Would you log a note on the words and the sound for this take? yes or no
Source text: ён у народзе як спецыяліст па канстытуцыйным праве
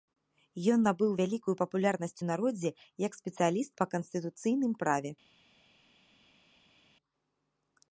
yes